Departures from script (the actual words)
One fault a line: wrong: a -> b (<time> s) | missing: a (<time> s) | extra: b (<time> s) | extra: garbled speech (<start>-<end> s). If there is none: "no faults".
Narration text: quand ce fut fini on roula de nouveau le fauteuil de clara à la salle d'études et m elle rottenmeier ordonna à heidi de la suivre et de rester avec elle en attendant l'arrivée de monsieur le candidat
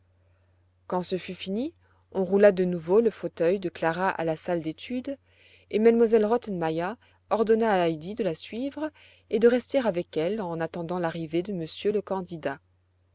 no faults